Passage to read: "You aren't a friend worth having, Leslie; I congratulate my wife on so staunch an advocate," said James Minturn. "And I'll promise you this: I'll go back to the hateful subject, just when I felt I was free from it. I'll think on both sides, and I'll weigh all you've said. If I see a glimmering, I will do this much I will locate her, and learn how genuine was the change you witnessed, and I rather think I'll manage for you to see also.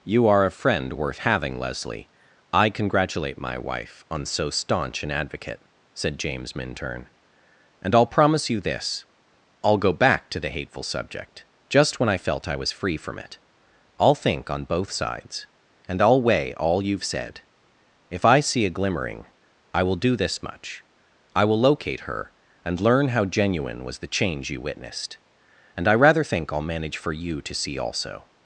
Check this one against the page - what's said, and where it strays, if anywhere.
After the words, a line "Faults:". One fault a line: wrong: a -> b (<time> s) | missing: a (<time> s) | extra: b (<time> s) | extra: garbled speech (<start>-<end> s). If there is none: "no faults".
"You are a friend worth having, Leslie; I congratulate my wife on so staunch an advocate," said James Minturn. "And I'll promise you this: I'll go back to the hateful subject, just when I felt I was free from it. I'll think on both sides, and I'll weigh all you've said. If I see a glimmering, I will do this much I will locate her, and learn how genuine was the change you witnessed, and I rather think I'll manage for you to see also.
Faults:
wrong: aren't -> are (0.3 s)